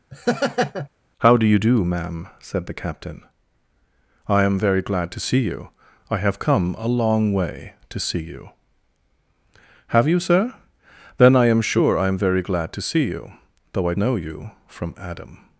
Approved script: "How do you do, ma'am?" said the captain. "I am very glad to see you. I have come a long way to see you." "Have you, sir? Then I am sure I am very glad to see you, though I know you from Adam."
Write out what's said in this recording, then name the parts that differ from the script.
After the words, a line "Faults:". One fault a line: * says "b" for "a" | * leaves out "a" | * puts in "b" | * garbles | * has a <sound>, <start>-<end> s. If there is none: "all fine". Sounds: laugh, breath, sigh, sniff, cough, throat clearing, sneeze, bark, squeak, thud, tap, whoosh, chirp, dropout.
"How do you do, ma'am?" said the captain. "I am very glad to see you. I have come a long way to see you." "Have you, sir? Then I am sure I am very glad to see you, though I know you from Adam."
Faults:
* has a laugh, 0.1-0.9 s